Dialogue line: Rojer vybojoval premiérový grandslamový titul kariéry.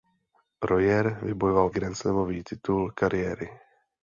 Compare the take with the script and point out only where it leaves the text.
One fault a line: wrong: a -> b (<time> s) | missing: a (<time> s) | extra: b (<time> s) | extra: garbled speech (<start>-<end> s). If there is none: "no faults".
missing: premiérový (1.7 s)